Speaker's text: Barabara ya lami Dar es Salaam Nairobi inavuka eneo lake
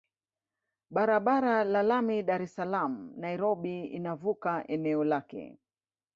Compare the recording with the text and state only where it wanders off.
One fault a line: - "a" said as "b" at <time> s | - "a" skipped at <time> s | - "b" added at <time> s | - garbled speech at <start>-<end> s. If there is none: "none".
none